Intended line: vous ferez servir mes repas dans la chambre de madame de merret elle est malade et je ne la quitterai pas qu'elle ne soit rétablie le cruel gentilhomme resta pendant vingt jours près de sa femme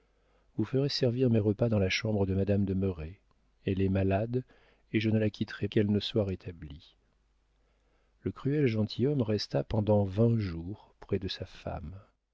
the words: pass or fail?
fail